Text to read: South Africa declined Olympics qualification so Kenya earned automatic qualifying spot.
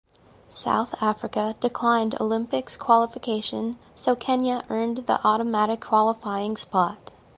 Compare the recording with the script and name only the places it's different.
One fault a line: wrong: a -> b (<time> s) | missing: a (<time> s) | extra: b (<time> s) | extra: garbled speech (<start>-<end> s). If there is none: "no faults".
extra: the (5.1 s)